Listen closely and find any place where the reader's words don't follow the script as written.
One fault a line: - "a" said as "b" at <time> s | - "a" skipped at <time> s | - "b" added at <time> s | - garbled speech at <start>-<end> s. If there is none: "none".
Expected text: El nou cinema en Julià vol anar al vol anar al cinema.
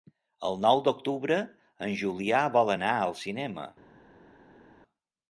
- "cinema" said as "d'octubre" at 0.9 s
- "vol anar al" skipped at 3.2 s